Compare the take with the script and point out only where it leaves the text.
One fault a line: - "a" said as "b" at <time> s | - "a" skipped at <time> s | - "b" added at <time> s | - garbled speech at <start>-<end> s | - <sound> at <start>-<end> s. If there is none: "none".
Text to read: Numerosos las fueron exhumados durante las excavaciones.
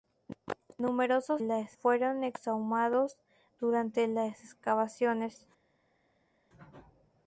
none